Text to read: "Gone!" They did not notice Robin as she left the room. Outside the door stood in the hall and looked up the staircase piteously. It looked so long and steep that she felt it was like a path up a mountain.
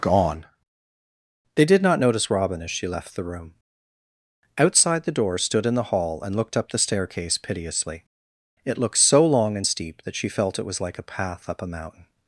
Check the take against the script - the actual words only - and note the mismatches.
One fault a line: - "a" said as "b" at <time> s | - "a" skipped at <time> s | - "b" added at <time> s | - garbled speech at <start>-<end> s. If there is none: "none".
none